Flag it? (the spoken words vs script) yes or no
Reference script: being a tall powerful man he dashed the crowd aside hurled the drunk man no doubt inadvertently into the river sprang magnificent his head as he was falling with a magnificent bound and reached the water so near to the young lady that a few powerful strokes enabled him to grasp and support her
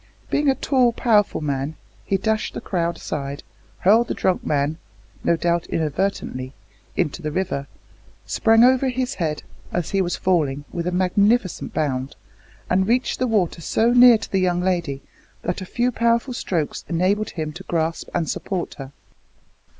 yes